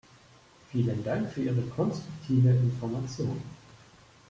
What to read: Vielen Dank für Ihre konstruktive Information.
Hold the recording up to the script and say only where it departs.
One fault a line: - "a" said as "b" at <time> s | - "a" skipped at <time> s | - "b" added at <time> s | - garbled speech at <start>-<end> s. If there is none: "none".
none